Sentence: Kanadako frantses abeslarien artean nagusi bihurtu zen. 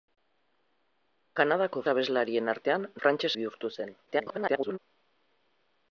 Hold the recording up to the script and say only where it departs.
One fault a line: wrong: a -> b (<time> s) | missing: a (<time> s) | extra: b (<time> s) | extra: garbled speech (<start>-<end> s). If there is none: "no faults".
missing: frantses (1.8 s)
wrong: nagusi -> frantses (3.0 s)
extra: garbled speech (4.1-4.8 s)